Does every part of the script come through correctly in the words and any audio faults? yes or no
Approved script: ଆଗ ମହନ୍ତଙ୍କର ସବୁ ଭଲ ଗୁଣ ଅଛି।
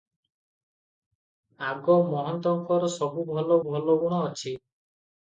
no